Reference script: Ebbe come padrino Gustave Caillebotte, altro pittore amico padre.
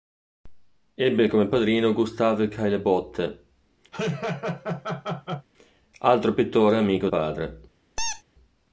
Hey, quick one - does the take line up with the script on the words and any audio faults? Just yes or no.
no